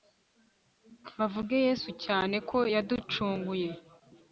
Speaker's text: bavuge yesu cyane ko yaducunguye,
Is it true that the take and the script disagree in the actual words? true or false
false